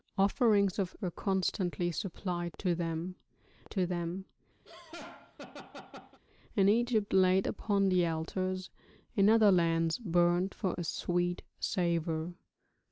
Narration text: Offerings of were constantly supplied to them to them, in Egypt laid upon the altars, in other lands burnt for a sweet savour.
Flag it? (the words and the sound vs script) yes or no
yes